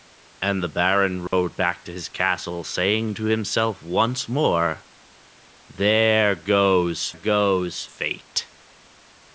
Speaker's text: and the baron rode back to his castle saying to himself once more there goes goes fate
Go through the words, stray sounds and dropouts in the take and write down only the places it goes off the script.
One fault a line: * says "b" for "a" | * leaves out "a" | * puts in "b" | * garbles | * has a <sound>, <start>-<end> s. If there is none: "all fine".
* has a dropout, 1.3-1.3 s